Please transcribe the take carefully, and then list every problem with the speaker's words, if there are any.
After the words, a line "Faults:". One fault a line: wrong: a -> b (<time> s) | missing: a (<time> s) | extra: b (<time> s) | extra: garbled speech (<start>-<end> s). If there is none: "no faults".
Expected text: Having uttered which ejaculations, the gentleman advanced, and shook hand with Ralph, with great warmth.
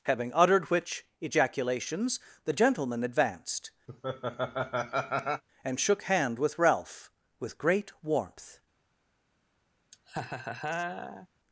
Having uttered which ejaculations, the gentleman advanced, and shook hand with Ralph, with great warmth.
Faults:
no faults